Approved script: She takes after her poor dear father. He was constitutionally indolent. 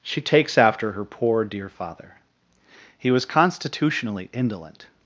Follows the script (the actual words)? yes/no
yes